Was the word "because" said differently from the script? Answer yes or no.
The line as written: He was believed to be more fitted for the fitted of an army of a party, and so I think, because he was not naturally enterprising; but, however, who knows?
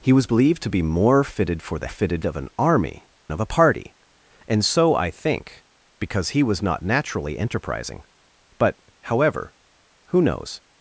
no